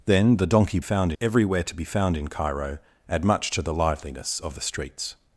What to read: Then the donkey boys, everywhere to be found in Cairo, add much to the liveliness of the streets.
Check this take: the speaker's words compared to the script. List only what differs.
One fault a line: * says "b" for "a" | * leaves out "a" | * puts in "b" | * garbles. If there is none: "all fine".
* says "found" for "boys"